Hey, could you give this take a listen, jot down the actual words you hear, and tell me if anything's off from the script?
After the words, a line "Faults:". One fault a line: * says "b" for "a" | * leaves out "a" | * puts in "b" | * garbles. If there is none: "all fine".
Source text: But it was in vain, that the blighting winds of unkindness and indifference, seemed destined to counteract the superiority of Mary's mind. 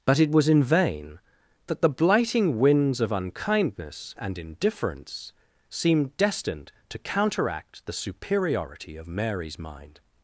But it was in vain, that the blighting winds of unkindness and indifference, seemed destined to counteract the superiority of Mary's mind.
Faults:
all fine